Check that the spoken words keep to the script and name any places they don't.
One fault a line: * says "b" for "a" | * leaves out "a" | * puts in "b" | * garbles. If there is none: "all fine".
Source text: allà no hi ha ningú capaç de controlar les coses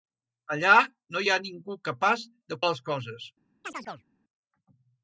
* leaves out "controlar"